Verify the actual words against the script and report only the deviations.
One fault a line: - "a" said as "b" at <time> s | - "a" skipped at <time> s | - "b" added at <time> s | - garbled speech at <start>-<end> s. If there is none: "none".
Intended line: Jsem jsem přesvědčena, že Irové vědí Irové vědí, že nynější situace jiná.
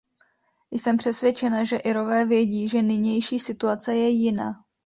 - "jsem" skipped at 1.0 s
- "Irové vědí" skipped at 2.7 s
- "je" added at 4.0 s